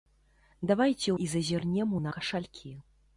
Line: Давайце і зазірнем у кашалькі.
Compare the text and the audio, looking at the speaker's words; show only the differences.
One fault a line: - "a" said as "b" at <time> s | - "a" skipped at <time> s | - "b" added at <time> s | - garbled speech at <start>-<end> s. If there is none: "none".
none